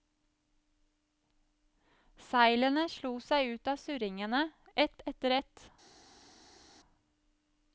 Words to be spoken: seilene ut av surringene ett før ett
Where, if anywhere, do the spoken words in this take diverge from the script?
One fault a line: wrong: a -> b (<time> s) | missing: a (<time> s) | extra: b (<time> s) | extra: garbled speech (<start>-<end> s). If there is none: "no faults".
extra: slo seg (3.0 s)
wrong: før -> etter (5.1 s)